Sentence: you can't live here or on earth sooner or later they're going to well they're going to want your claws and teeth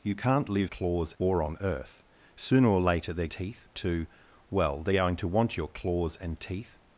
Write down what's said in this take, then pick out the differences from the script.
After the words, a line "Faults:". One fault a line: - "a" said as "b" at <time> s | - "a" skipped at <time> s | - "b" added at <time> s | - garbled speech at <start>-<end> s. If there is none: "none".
you can't live claws or on earth sooner or later they're teeth to well they're going to want your claws and teeth
Faults:
- "here" said as "claws" at 0.6 s
- "going" said as "teeth" at 3.3 s